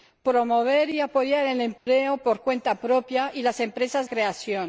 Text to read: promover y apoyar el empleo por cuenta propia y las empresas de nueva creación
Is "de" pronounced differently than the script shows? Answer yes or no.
yes